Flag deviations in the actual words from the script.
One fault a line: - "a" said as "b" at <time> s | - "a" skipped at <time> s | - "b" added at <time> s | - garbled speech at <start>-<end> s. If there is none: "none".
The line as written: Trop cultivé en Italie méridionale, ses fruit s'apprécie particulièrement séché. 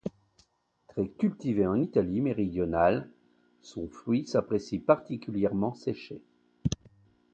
- "Trop" said as "Très" at 0.9 s
- "ses" said as "son" at 3.6 s